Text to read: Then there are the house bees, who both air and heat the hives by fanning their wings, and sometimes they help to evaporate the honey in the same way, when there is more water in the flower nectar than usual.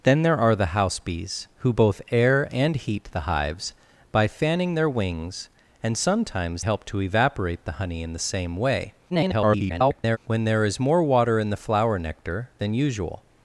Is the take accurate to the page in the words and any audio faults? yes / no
no